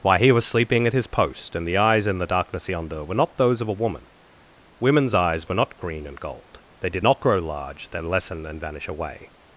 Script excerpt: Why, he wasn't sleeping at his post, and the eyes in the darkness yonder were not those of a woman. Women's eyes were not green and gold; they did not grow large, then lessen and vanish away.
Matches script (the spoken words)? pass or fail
fail